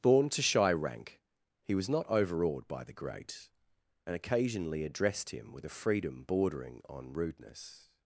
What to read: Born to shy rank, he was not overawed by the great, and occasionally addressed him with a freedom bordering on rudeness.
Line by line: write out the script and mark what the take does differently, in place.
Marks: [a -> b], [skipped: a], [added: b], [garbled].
Born to shy rank, he was not overawed by the great, and occasionally addressed him with a freedom bordering on rudeness.